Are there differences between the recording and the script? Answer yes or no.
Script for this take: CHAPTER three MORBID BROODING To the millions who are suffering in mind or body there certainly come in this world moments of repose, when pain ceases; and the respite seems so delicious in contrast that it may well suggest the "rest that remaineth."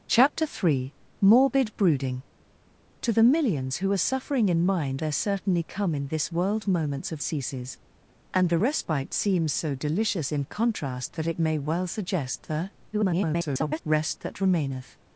yes